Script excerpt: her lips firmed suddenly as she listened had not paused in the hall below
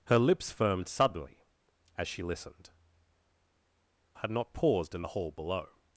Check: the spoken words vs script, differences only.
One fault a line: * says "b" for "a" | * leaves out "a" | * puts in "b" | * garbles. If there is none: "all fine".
all fine